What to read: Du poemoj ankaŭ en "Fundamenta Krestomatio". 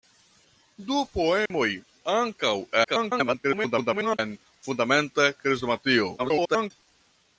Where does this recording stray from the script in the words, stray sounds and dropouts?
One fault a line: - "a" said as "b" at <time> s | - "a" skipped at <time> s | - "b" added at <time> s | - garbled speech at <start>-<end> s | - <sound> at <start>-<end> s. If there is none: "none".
- dropout at 1.5-1.5 s
- garbled speech at 2.8-4.2 s
- garbled speech at 6.2-6.7 s